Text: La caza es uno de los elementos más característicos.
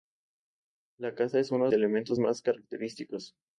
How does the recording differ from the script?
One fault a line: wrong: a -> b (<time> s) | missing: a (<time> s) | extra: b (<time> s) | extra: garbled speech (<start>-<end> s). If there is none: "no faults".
missing: de los (1.7 s)